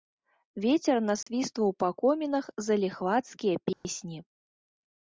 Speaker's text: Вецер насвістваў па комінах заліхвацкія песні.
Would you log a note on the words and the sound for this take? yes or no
yes